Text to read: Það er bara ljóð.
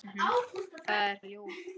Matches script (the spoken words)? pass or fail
fail